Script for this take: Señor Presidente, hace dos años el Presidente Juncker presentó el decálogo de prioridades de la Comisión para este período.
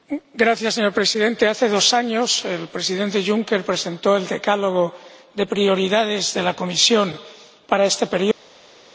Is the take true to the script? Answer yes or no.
yes